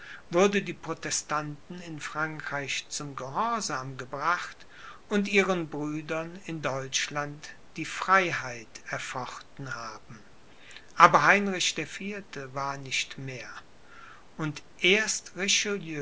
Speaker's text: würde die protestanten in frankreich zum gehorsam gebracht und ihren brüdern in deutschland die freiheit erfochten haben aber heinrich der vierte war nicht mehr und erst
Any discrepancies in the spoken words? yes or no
no